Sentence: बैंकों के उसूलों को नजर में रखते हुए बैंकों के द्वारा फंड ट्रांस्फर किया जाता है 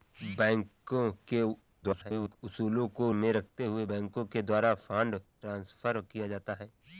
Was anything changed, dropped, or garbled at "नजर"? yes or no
yes